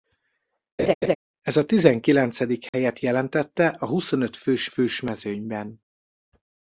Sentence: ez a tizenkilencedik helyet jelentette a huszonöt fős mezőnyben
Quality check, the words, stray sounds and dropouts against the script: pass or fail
fail